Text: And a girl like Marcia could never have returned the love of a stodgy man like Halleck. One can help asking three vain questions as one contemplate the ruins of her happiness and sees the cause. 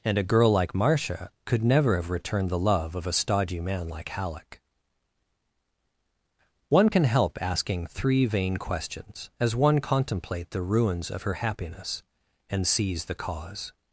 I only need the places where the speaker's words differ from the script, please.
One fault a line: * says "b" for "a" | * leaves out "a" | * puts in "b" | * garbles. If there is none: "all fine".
all fine